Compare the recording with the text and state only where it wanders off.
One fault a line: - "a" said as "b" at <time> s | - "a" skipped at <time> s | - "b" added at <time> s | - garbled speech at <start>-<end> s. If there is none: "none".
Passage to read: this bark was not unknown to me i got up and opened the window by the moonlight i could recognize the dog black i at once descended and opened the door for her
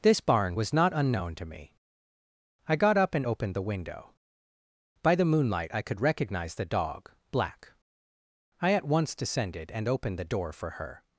- "bark" said as "barn" at 0.2 s